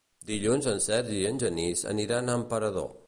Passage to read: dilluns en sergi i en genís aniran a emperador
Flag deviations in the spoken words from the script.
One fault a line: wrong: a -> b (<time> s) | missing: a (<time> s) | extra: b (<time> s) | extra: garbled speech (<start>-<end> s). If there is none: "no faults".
no faults